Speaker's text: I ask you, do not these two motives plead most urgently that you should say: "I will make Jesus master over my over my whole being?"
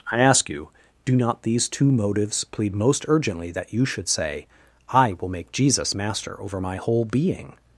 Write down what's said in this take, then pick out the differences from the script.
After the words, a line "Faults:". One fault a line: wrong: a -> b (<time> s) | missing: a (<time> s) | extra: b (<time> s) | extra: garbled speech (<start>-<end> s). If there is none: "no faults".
I ask you, do not these two motives plead most urgently that you should say: "I will make Jesus master over my whole being?"
Faults:
missing: over my (6.8 s)